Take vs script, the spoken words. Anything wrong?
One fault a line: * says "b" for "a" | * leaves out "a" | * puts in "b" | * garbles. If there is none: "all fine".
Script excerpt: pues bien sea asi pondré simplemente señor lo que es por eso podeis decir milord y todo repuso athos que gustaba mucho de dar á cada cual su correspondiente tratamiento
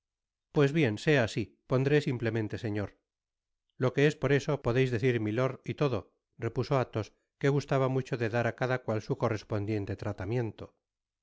all fine